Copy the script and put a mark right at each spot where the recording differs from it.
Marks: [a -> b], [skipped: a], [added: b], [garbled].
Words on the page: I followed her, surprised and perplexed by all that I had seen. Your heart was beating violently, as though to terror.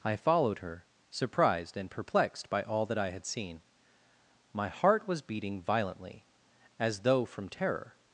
I followed her, surprised and perplexed by all that I had seen. [Your -> My] heart was beating violently, as though [to -> from] terror.